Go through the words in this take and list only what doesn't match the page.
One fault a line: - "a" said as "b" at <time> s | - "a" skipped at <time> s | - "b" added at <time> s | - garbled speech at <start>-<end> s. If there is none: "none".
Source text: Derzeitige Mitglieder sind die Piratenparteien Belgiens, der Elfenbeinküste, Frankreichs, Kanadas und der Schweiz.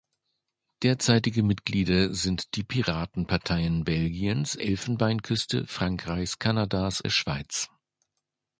- "der" skipped at 4.6 s
- "und" skipped at 7.0 s